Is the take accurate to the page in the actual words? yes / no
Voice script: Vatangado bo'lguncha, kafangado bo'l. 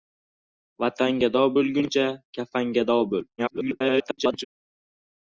no